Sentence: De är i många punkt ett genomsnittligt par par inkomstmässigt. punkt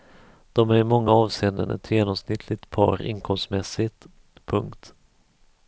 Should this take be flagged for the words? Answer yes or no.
yes